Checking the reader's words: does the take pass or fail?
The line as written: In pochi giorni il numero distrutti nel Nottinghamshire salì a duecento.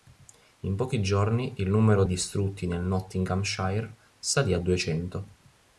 pass